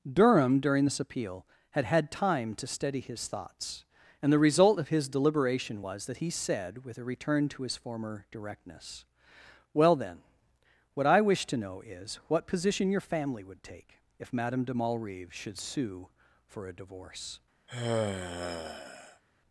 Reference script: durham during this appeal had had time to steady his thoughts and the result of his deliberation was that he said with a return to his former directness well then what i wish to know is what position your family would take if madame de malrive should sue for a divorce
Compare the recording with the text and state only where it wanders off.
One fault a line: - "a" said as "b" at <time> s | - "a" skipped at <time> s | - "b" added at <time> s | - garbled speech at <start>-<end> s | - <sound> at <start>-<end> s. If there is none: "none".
- sigh at 17.7-19.2 s